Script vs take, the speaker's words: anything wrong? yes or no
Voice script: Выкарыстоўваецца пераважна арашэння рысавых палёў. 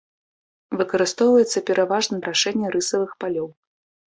no